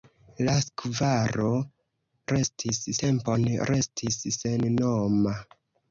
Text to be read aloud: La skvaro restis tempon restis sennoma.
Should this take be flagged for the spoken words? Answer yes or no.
no